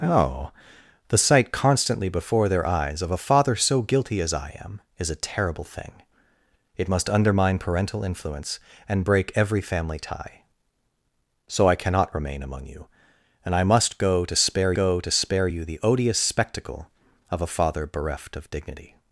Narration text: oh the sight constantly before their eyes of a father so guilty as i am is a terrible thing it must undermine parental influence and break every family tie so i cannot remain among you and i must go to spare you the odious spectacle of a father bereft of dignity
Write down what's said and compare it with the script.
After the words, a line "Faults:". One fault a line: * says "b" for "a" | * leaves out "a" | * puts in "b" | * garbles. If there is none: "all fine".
oh the sight constantly before their eyes of a father so guilty as i am is a terrible thing it must undermine parental influence and break every family tie so i cannot remain among you and i must go to spare go to spare you the odious spectacle of a father bereft of dignity
Faults:
* puts in "go to spare"